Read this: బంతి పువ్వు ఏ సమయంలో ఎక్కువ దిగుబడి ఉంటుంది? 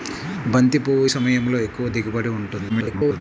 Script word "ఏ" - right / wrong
wrong